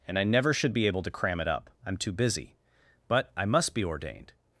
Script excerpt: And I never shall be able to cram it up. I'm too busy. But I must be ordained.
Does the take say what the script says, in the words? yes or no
no